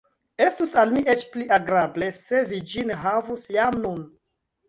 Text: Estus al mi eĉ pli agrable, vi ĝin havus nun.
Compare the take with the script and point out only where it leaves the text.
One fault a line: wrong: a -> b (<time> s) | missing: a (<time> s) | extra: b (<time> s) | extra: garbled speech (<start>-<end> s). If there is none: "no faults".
extra: se (2.2 s)
extra: jam (3.6 s)